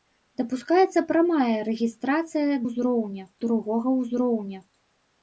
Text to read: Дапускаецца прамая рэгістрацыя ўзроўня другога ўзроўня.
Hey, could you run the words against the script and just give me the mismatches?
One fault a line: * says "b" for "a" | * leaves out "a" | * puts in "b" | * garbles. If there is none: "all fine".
all fine